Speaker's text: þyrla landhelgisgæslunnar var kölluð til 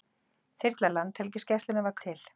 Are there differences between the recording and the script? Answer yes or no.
yes